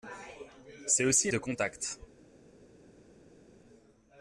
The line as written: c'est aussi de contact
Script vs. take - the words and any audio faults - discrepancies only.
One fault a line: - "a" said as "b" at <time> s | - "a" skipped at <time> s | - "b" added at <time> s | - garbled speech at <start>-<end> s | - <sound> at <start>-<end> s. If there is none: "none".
none